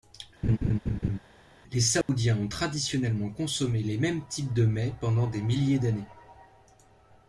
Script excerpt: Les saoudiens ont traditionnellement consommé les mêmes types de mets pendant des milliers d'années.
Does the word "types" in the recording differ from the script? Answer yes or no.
no